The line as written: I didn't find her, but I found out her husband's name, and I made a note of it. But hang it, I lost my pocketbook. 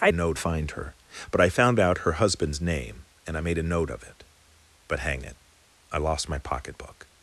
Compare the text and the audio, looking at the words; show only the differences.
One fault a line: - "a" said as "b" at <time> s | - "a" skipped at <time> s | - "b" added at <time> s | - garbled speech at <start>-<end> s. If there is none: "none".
- "didn't" said as "note" at 0.1 s